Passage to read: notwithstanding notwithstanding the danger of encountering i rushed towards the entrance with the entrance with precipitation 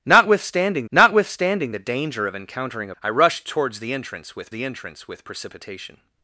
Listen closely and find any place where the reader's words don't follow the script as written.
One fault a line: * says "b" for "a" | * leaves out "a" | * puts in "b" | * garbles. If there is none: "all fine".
all fine